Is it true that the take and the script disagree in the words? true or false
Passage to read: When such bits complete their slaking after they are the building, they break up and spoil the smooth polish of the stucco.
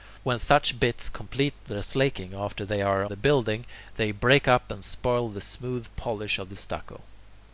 false